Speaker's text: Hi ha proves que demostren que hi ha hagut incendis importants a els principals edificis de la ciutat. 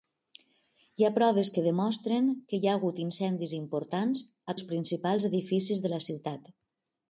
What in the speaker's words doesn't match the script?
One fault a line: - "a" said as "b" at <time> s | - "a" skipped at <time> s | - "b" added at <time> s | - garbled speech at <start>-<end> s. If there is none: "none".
none